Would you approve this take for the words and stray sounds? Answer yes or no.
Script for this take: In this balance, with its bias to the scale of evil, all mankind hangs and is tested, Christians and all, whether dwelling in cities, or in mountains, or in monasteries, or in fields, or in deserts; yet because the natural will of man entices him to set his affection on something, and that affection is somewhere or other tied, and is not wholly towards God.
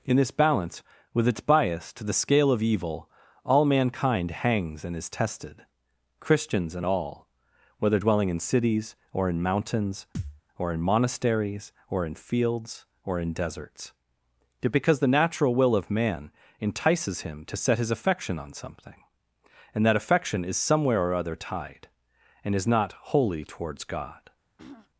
no